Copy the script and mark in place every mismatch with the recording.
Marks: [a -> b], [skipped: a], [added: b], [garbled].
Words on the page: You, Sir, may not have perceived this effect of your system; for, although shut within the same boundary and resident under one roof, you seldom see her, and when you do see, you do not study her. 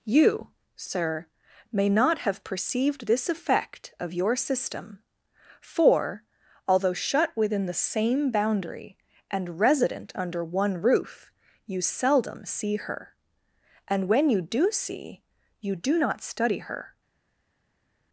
You, Sir, may not have perceived this effect of your system; for, although shut within the same boundary and resident under one roof, you seldom see her, and when you do see, you do not study her.